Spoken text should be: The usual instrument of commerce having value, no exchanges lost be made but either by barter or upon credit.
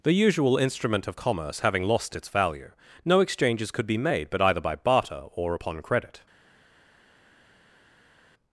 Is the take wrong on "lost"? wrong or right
wrong